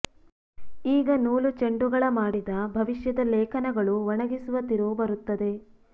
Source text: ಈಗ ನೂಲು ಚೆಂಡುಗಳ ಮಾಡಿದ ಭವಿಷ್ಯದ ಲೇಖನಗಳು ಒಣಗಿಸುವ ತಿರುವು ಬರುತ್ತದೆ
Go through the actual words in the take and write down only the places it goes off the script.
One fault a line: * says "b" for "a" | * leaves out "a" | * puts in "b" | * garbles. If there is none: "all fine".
all fine